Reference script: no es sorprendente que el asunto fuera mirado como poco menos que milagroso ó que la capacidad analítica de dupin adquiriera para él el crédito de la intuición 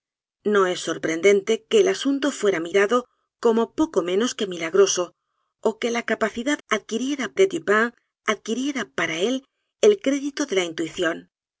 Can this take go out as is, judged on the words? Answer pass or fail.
fail